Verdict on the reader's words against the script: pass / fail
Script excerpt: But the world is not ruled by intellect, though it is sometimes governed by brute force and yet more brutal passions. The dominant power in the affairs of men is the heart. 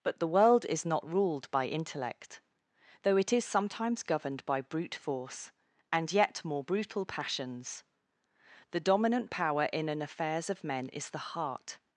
fail